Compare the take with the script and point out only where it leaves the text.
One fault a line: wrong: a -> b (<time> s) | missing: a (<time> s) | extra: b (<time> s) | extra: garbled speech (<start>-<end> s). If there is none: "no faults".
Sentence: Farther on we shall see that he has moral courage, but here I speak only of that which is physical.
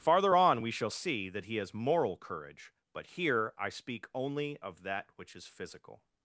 no faults